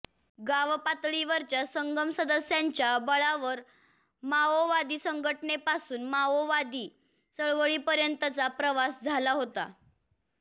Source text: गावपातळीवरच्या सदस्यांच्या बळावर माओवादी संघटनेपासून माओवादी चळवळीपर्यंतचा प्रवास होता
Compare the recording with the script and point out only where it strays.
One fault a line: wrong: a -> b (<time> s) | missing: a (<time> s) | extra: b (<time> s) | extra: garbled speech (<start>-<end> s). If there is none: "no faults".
extra: संगम (1.6 s)
extra: झाला (9.0 s)